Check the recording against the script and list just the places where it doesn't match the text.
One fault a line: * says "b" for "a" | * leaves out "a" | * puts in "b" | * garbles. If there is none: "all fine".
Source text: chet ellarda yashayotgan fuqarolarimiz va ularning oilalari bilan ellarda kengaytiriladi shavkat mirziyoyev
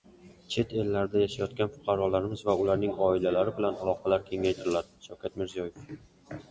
* says "aloqalar" for "ellarda"